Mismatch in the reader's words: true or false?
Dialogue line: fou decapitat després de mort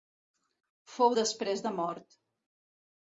true